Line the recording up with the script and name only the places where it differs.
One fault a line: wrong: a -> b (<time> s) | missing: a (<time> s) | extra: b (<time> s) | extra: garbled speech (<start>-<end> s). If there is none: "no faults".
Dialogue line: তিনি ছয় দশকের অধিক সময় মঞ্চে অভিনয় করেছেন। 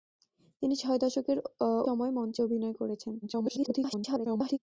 missing: অধিক (1.4 s)
extra: garbled speech (3.2-4.6 s)